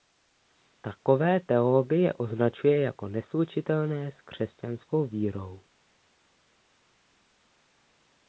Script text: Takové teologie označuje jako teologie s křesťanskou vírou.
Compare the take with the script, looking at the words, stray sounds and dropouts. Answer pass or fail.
fail